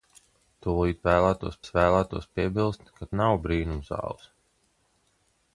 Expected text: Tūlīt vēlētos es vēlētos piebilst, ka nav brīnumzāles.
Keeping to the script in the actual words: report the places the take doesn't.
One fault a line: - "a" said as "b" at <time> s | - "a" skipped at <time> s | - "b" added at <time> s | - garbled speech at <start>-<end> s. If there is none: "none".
none